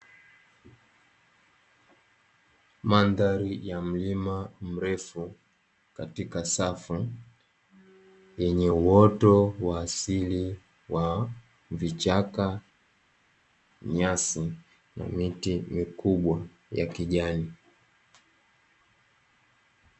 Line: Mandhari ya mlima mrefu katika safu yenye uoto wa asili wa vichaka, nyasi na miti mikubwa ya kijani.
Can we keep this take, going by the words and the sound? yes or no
yes